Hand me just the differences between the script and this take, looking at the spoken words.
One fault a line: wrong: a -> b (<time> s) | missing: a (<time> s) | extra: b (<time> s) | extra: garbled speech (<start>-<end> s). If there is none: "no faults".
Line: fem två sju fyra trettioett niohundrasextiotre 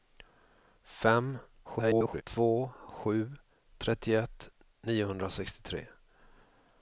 extra: garbled speech (1.6-2.2 s)
missing: fyra (3.3 s)